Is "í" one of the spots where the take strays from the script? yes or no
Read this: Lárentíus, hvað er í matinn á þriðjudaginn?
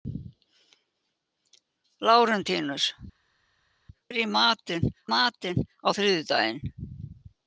no